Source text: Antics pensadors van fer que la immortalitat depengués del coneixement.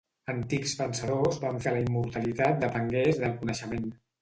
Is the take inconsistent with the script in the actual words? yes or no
yes